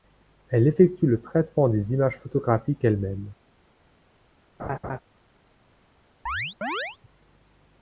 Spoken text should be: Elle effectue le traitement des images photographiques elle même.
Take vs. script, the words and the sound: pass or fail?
fail